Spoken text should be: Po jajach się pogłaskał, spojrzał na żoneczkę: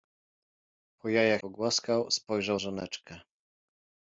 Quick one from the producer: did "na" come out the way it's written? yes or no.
no